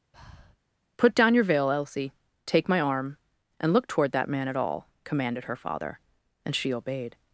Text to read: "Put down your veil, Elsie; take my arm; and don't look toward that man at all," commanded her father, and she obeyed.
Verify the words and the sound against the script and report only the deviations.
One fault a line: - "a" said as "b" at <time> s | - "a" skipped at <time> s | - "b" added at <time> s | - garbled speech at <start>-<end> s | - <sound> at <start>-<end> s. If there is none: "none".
- breath at 0.1-0.6 s
- "don't" skipped at 3.7 s